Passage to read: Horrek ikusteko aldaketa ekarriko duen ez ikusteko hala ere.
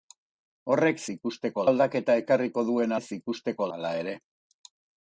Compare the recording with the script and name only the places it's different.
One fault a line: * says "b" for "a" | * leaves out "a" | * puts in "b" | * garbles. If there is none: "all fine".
all fine